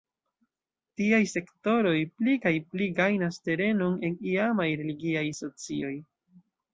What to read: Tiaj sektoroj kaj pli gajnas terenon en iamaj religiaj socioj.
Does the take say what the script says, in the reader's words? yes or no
no